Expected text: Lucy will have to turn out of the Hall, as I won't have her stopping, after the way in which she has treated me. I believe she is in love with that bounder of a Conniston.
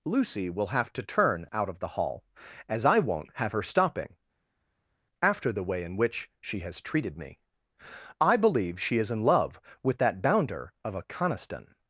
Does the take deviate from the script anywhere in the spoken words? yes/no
no